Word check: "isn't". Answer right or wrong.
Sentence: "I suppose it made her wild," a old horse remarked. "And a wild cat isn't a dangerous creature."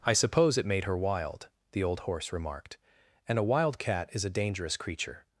wrong